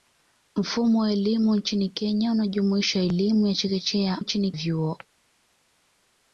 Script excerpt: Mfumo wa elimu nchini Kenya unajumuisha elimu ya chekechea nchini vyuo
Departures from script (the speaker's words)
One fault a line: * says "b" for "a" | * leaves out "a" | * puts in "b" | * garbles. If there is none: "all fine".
all fine